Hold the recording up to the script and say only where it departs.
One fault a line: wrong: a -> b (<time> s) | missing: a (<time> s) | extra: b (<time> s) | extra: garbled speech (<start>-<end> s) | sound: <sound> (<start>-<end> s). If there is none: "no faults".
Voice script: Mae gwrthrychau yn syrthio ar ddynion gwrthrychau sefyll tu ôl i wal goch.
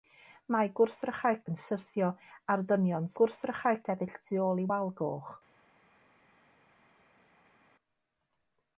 no faults